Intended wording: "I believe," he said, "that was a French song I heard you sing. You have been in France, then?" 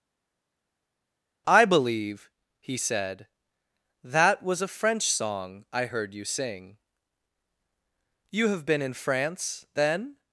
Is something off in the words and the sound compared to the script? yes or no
no